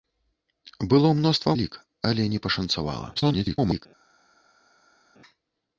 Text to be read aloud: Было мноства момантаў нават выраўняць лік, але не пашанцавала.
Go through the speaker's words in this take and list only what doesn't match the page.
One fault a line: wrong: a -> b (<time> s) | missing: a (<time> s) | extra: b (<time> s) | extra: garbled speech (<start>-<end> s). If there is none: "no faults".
missing: момантаў нават выраўняць (1.5 s)
extra: garbled speech (3.2-3.9 s)